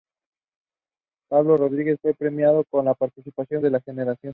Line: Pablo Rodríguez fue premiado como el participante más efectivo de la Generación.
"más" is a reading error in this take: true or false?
true